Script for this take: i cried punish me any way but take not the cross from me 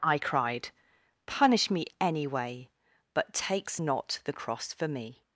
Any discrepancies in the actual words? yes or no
yes